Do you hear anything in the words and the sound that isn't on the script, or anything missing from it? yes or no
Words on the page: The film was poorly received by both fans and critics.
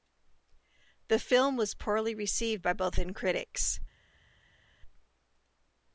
yes